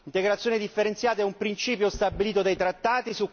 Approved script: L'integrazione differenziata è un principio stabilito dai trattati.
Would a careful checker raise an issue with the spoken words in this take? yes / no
no